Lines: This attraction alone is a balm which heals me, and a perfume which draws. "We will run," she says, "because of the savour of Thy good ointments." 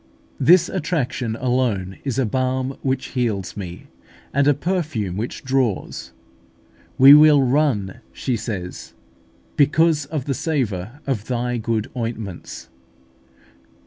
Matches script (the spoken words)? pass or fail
pass